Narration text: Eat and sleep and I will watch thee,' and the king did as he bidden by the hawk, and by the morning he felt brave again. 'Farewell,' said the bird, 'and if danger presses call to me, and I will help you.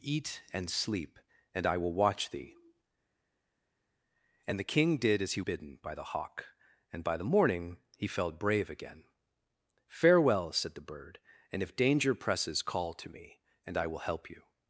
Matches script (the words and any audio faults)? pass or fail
pass